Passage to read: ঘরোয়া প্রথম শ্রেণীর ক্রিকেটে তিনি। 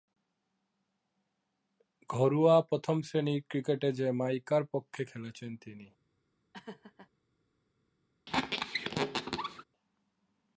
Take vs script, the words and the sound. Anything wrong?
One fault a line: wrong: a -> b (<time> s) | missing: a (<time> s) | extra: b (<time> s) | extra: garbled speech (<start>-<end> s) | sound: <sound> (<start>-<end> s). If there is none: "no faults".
extra: জ্যামাইকার পক্ষে খেলেছেন (3.9 s)
sound: laugh (6.5-7.1 s)
sound: squeak (8.3-9.6 s)